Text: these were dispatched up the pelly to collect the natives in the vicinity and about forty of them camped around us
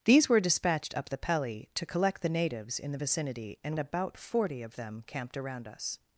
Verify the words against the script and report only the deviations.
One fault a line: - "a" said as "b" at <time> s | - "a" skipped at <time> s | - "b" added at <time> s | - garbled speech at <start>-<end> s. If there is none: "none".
none